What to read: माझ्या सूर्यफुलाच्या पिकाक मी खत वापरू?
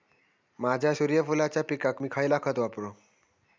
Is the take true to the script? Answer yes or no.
no